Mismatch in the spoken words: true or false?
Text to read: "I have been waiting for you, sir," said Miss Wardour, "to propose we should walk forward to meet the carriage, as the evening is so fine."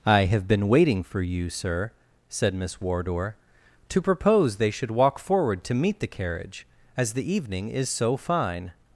true